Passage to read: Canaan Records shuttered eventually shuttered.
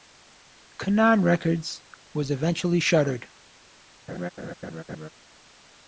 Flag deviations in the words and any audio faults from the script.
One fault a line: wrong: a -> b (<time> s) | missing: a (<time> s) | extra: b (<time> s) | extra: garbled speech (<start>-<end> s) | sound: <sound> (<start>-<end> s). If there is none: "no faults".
wrong: shuttered -> was (2.1 s)
sound: laugh (4.1-5.1 s)